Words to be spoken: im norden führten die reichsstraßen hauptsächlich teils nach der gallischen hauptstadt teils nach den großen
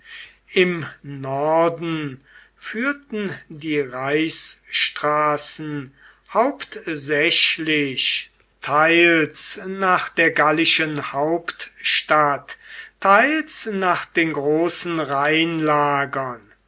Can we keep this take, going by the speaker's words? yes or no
yes